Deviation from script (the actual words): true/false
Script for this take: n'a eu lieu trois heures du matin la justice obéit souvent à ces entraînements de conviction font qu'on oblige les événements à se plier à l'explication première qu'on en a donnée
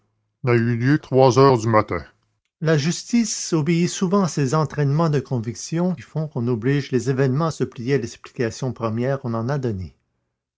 false